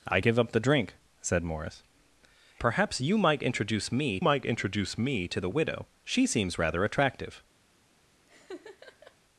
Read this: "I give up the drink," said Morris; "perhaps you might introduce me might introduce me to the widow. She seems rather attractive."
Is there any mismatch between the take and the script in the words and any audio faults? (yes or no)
yes